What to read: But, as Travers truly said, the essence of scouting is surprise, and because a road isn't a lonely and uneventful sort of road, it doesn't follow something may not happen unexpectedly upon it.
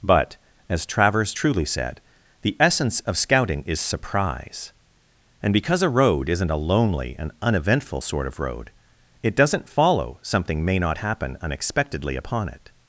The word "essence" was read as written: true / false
true